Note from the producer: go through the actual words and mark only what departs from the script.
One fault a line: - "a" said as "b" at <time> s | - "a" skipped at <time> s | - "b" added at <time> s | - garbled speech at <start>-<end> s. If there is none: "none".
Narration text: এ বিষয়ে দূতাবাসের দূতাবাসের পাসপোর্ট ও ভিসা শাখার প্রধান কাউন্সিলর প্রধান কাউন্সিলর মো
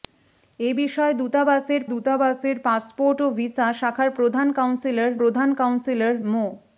none